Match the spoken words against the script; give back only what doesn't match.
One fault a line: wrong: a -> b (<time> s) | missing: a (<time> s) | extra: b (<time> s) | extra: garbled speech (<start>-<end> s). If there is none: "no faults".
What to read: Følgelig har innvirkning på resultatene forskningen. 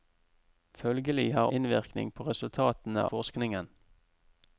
no faults